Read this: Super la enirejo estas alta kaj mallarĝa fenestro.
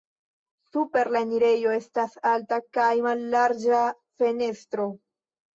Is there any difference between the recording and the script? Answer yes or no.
no